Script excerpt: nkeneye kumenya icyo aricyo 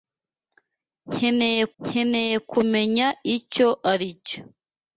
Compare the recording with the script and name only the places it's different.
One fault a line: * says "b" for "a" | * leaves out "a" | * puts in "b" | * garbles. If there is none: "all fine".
* puts in "nkeneye"